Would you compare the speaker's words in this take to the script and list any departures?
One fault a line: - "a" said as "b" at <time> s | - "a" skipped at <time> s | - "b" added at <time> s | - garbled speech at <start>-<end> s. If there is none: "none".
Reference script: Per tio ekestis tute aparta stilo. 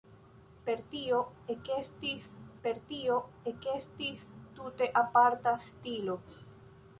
- "per tio ekestis" added at 2.7 s